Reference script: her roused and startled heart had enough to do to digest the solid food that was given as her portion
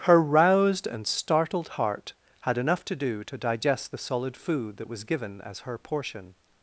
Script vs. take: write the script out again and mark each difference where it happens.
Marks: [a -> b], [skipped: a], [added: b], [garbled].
her roused and startled heart had enough to do to digest the solid food that was given as her portion